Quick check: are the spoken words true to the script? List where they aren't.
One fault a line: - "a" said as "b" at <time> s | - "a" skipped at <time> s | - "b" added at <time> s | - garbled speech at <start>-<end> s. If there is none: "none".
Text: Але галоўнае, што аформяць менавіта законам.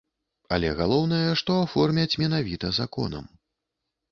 none